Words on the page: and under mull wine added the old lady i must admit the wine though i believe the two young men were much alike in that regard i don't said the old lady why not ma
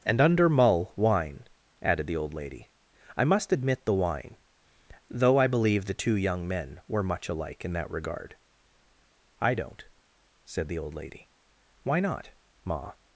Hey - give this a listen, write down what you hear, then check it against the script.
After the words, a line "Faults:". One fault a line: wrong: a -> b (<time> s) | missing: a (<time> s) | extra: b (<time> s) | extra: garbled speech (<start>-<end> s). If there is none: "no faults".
and under mull wine added the old lady i must admit the wine though i believe the two young men were much alike in that regard i don't said the old lady why not ma
Faults:
no faults